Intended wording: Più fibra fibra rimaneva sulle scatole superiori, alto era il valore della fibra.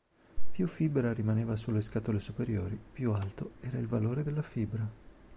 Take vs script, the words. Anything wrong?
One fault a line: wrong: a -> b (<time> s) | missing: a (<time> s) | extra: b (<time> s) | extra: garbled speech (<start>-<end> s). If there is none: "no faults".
missing: fibra (1.1 s)
extra: più (2.9 s)